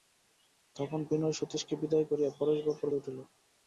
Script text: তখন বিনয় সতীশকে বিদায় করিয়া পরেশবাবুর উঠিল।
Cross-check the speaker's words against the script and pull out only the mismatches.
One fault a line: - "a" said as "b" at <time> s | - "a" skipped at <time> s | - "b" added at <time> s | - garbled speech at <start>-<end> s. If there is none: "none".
none